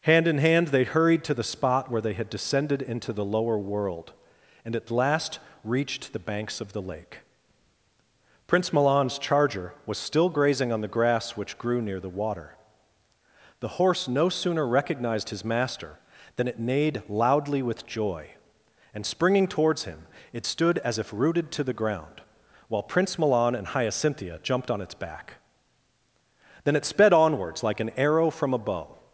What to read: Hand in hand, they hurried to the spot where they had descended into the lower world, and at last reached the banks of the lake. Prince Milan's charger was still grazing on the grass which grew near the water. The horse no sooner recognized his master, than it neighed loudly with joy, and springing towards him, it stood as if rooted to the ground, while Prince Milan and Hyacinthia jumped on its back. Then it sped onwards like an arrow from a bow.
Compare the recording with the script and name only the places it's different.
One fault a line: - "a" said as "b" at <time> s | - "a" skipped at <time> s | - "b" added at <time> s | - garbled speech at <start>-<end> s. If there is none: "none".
none